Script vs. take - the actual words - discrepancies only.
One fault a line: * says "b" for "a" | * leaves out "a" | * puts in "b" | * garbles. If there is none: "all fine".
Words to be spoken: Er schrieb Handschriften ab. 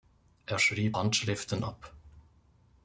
all fine